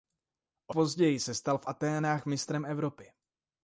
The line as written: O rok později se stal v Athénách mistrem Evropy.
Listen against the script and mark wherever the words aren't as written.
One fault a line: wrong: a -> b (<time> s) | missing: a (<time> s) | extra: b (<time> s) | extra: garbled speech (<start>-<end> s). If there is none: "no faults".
missing: rok (0.8 s)